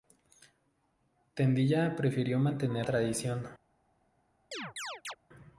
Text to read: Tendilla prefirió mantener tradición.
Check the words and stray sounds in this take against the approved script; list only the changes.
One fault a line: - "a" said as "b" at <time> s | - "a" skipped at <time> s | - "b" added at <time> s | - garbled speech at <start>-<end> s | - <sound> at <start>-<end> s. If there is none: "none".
- chirp at 4.5-5.2 s